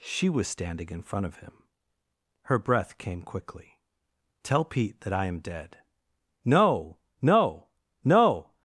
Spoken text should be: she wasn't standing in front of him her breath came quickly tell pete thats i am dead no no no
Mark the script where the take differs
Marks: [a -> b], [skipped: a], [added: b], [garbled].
she [wasn't -> was] standing in front of him her breath came quickly tell pete [thats -> that] i am dead no no no